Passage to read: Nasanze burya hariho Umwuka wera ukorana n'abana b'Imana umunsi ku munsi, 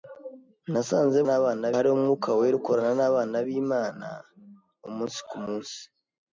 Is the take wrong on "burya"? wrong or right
wrong